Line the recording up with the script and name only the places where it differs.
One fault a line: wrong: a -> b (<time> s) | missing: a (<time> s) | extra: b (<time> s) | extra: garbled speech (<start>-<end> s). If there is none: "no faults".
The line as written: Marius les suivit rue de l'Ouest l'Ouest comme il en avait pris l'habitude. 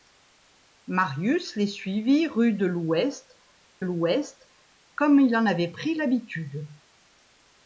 no faults